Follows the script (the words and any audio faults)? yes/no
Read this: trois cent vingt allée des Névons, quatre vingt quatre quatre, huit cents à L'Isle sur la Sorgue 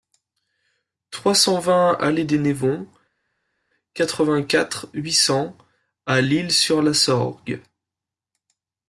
no